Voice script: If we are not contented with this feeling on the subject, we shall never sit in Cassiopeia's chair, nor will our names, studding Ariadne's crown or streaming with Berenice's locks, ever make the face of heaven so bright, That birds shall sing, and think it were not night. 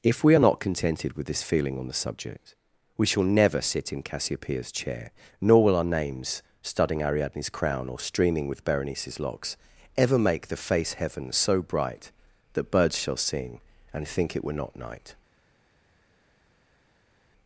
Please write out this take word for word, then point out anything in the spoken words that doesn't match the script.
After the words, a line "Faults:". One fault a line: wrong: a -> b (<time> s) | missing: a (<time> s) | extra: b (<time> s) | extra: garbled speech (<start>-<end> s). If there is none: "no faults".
If we are not contented with this feeling on the subject, we shall never sit in Cassiopeia's chair, nor will our names, studding Ariadne's crown or streaming with Berenice's locks, ever make the face heaven so bright, That birds shall sing, and think it were not night.
Faults:
missing: of (10.9 s)